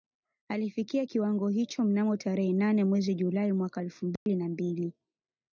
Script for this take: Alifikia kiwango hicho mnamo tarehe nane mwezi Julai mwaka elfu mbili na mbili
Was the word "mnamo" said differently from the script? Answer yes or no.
no